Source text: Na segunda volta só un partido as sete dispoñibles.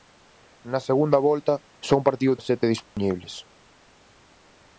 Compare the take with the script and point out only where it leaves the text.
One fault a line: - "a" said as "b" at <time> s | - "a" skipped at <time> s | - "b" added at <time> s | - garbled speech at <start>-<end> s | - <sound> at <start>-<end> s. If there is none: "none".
- dropout at 2.9-3.0 s